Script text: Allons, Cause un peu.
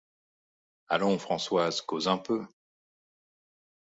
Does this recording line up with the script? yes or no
no